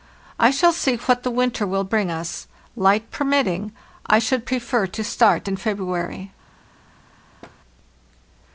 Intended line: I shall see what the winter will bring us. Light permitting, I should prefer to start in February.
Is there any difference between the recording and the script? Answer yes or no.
no